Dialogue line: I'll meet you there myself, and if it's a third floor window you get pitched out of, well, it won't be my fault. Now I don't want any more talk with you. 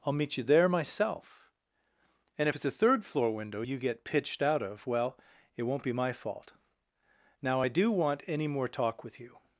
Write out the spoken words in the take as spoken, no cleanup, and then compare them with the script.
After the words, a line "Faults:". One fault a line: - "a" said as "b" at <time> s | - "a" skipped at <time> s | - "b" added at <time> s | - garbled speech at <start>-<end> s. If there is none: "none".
I'll meet you there myself, and if it's a third floor window you get pitched out of, well, it won't be my fault. Now I do want any more talk with you.
Faults:
- "don't" said as "do" at 7.7 s